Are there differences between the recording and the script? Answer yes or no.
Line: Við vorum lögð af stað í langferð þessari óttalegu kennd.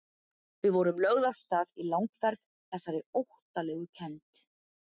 no